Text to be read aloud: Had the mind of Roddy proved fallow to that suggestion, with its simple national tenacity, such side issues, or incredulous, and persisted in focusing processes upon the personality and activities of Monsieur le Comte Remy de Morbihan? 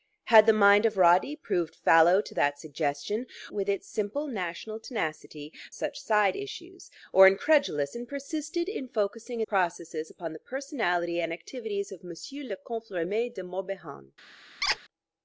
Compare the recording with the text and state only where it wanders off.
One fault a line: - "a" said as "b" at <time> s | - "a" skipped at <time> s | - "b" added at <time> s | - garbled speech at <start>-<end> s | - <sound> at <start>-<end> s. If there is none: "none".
- squeak at 14.6-14.8 s